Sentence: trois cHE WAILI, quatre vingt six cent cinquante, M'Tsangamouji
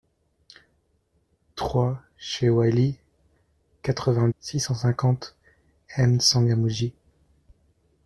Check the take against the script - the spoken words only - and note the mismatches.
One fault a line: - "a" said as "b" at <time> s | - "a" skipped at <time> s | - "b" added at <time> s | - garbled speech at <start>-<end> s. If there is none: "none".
none